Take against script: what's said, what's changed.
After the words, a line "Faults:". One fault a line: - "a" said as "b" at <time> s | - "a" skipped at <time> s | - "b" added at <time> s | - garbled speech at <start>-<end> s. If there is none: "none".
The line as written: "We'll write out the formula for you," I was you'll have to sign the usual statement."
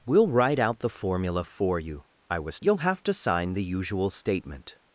"We'll write out the formula for you," I was you'll have to sign the usual statement."
Faults:
none